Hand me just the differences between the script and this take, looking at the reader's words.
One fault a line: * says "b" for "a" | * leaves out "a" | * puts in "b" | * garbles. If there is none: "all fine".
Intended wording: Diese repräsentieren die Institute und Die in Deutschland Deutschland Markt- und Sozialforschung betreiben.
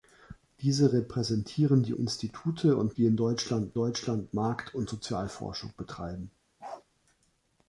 all fine